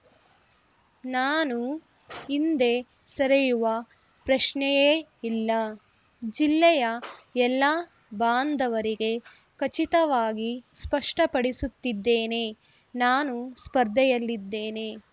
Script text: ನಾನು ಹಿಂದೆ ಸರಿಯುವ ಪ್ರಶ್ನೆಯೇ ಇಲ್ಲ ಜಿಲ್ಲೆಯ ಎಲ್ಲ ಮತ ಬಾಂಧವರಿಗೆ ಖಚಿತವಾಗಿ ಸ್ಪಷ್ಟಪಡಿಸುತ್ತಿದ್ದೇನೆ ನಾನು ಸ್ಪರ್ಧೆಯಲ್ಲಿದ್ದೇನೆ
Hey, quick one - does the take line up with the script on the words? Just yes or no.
no